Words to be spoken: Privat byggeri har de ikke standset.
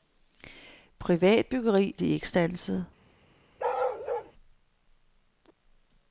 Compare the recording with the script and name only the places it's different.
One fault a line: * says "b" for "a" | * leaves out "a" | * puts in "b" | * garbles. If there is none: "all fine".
* leaves out "har"